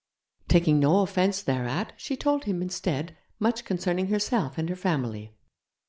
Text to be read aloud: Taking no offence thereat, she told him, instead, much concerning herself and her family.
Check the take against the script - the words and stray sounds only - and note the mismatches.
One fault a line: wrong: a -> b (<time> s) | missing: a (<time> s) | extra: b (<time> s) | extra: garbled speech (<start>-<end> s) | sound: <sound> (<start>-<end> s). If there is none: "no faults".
no faults